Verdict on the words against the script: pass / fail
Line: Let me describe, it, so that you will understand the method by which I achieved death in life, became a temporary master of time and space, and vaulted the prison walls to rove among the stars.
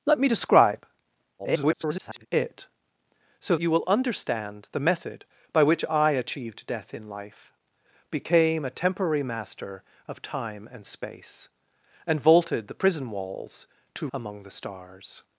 fail